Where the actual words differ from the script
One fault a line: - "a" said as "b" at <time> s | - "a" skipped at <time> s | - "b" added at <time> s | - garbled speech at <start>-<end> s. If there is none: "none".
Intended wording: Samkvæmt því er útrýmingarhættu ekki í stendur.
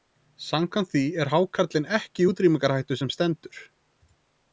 - "útrýmingarhættu" said as "hákarlinn" at 1.3 s
- "útrýmingarhættu sem" added at 2.3 s